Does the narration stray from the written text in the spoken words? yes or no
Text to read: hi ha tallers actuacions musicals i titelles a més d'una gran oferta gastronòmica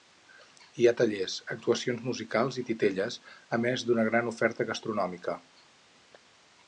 no